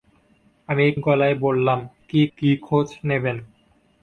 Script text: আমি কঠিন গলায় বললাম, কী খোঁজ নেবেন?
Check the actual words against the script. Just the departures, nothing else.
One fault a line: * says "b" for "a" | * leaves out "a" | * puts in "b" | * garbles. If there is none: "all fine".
* leaves out "কঠিন"
* puts in "কী"